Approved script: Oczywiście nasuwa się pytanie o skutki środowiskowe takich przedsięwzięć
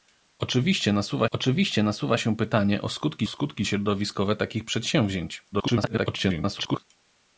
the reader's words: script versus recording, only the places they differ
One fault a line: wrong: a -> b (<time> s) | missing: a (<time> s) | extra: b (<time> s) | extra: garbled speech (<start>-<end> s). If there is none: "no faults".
extra: oczywiście nasuwa (1.3 s)
extra: skutki (3.3 s)
extra: garbled speech (5.5-6.8 s)